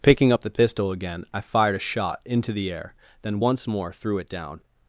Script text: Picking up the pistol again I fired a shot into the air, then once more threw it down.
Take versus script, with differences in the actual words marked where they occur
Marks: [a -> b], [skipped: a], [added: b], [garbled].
Picking up the pistol again I fired a shot into the air, then once more threw it down.